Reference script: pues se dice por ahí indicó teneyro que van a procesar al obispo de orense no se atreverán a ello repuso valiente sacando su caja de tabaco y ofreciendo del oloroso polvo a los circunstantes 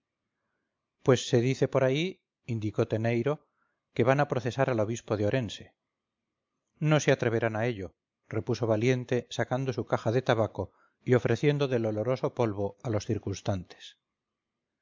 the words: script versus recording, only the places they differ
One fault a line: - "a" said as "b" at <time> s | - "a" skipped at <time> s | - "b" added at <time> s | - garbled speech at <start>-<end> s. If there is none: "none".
none